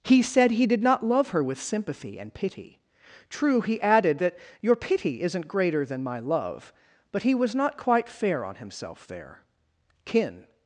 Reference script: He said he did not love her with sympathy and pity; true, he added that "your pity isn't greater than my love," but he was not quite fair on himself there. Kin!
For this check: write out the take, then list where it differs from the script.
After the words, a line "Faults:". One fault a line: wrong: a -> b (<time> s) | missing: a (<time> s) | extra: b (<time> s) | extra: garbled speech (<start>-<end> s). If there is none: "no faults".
He said he did not love her with sympathy and pity; true, he added that "your pity isn't greater than my love," but he was not quite fair on himself there. Kin!
Faults:
no faults